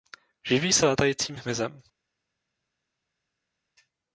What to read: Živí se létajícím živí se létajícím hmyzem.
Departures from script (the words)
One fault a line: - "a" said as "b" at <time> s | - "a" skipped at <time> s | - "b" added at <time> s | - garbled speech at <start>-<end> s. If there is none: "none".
- "živí se létajícím" skipped at 1.4 s